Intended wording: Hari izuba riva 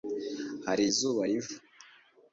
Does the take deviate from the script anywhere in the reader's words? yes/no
no